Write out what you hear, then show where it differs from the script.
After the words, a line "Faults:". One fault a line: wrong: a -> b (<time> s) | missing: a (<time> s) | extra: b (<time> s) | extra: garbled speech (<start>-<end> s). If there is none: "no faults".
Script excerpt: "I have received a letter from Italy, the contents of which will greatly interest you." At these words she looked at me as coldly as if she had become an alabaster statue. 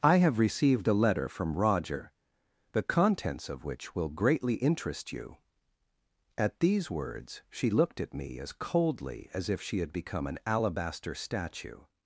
"I have received a letter from Roger, the contents of which will greatly interest you." At these words she looked at me as coldly as if she had become an alabaster statue.
Faults:
wrong: Italy -> Roger (1.6 s)